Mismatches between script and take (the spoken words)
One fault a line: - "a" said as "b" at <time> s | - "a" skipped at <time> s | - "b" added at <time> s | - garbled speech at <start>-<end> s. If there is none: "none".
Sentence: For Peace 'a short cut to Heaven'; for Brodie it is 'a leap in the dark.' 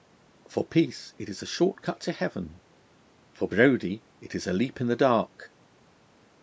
- "it is" added at 1.2 s